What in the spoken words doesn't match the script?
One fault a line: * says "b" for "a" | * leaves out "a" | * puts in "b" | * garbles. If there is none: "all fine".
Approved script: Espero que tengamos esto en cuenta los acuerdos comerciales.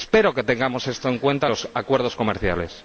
all fine